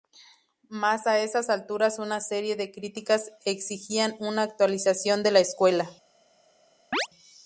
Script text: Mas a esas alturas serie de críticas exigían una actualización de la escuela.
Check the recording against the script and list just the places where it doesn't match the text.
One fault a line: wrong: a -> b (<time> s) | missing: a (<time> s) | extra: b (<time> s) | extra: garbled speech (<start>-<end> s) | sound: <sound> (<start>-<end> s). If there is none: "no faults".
extra: una (2.0 s)
sound: chirp (6.9-7.1 s)